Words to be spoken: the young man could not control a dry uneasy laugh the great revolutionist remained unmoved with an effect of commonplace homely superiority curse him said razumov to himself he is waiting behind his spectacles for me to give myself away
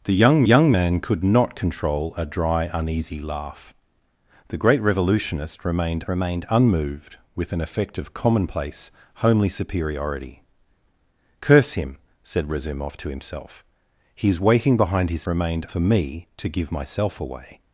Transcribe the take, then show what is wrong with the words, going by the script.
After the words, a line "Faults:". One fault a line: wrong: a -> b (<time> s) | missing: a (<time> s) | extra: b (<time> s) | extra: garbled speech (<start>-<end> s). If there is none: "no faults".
the young young man could not control a dry uneasy laugh the great revolutionist remained remained unmoved with an effect of commonplace homely superiority curse him said razumov to himself he is waiting behind his remained for me to give myself away
Faults:
extra: young (0.4 s)
extra: remained (6.1 s)
wrong: spectacles -> remained (15.3 s)